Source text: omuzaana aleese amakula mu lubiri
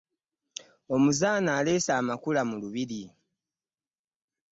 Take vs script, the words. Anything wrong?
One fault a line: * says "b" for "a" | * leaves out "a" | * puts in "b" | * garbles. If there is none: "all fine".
all fine